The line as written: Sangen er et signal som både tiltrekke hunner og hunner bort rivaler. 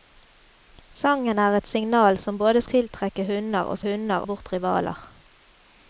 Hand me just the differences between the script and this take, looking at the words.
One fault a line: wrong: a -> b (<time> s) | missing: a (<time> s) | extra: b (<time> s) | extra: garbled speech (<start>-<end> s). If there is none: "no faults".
no faults